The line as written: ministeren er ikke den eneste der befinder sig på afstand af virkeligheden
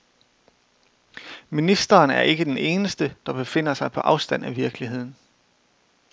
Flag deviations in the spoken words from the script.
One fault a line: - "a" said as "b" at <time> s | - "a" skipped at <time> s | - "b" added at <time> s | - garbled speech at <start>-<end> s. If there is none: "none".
none